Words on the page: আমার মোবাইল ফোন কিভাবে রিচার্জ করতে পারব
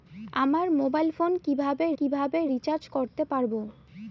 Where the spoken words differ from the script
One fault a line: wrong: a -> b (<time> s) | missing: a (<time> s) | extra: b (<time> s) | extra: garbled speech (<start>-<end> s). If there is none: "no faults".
extra: কিভাবে (2.0 s)